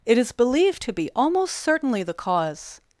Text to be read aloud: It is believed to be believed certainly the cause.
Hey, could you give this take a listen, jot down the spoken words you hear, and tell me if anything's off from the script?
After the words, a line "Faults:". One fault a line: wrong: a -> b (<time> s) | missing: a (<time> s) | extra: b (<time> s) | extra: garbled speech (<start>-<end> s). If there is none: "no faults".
It is believed to be almost certainly the cause.
Faults:
wrong: believed -> almost (1.1 s)